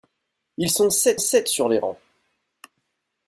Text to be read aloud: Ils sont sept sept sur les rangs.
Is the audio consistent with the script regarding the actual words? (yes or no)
yes